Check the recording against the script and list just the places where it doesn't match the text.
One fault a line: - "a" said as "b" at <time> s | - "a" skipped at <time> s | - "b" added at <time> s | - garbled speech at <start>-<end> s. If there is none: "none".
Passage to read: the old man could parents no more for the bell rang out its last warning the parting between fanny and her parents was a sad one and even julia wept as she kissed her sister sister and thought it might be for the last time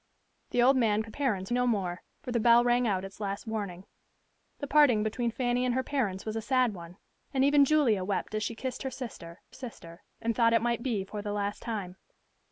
none